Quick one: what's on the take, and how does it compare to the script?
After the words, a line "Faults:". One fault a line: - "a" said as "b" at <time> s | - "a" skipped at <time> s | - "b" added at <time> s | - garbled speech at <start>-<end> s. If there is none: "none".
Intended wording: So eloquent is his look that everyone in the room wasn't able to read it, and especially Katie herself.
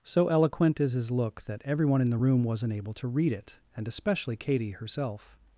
So eloquent is his look that everyone in the room wasn't able to read it, and especially Katie herself.
Faults:
none